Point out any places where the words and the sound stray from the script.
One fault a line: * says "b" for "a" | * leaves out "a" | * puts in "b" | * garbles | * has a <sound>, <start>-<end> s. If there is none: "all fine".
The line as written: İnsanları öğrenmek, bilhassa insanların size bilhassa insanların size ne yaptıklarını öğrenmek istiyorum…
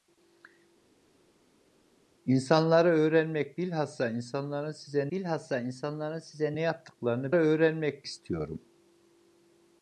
all fine